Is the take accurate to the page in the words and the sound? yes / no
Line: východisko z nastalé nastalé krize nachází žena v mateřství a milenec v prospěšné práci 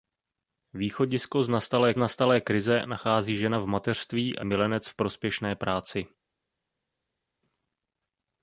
yes